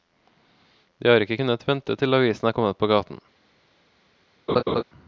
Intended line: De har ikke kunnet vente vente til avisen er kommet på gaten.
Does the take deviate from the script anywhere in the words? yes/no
yes